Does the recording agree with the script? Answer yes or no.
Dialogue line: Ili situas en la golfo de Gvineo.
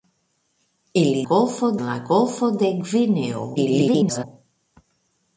no